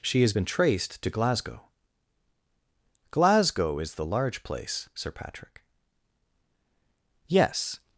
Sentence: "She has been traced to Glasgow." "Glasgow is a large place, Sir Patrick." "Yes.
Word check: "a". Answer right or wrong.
wrong